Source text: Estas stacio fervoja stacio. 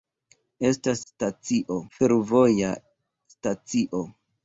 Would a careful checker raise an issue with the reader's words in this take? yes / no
no